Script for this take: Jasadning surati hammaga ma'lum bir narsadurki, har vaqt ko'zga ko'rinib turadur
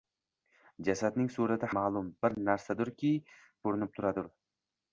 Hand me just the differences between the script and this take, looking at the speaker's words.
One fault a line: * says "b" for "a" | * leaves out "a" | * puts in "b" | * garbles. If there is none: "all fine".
* leaves out "hammaga"
* leaves out "har vaqt ko'zga"